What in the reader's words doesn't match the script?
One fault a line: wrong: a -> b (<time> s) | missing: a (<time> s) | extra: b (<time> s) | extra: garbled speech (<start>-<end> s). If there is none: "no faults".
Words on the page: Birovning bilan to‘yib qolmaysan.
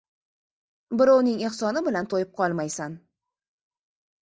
extra: ehsoni (1.5 s)